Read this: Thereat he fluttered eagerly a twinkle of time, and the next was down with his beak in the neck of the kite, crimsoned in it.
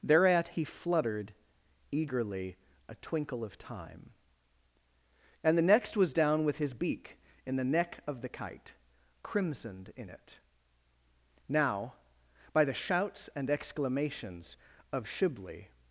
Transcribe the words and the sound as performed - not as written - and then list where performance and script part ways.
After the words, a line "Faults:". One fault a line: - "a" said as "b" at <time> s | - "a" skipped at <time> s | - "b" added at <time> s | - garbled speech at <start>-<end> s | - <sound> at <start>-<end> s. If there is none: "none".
Thereat he fluttered eagerly a twinkle of time, and the next was down with his beak in the neck of the kite, crimsoned in it. Now, by the shouts and exclamations of Shibli
Faults:
- "Now by the shouts and exclamations of Shibli" added at 11.5 s